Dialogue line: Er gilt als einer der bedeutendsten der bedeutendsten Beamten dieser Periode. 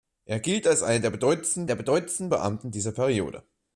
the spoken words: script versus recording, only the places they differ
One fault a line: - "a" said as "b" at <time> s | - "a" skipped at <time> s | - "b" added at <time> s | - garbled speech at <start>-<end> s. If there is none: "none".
none